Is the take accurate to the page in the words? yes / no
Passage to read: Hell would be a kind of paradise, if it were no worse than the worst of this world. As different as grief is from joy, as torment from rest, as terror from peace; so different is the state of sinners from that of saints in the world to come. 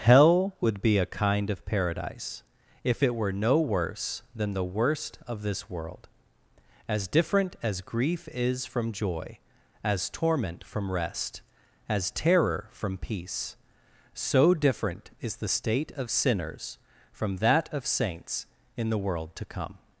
yes